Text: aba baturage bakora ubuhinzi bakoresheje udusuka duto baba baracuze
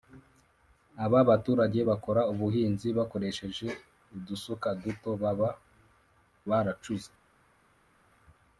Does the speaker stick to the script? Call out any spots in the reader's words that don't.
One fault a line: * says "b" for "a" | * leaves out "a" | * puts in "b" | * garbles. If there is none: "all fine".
all fine